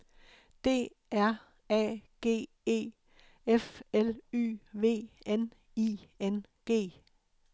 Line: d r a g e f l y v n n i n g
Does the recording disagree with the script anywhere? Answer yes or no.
yes